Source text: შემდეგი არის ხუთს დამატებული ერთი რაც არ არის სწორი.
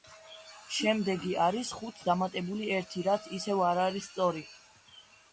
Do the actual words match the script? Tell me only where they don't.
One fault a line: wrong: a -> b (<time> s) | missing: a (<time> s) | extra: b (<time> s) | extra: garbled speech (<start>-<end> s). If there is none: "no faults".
extra: ისევ (3.4 s)